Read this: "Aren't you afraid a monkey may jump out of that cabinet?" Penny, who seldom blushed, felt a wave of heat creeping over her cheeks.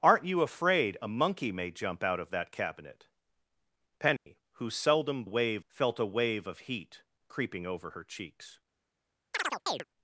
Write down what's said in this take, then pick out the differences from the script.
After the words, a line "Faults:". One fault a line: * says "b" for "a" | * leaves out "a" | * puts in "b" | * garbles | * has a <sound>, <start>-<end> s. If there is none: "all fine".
"Aren't you afraid a monkey may jump out of that cabinet?" Penny, who seldom wave, felt a wave of heat creeping over her cheeks.
Faults:
* has a dropout, 4.2-4.3 s
* says "wave" for "blushed"
* has a chirp, 9.3-9.8 s